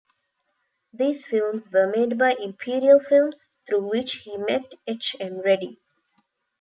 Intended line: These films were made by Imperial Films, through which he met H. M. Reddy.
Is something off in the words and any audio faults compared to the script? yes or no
no